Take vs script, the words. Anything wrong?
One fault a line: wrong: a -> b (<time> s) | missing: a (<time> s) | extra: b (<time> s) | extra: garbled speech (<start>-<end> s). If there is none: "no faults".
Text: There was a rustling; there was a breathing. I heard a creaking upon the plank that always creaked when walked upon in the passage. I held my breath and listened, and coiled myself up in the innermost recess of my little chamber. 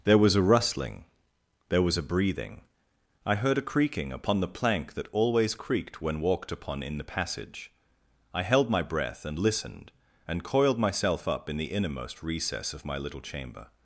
no faults